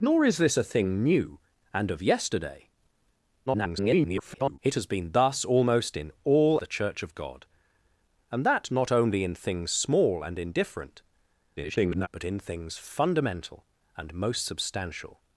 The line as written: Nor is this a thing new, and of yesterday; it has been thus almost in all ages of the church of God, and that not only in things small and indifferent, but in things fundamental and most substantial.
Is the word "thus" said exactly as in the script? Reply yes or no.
yes